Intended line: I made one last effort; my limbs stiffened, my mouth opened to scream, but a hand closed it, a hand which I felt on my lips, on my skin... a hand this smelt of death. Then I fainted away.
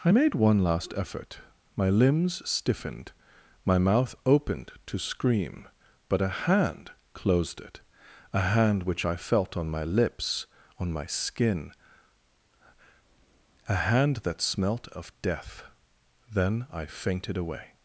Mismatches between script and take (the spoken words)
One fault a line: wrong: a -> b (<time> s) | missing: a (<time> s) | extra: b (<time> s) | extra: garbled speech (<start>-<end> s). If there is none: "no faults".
wrong: this -> that (14.2 s)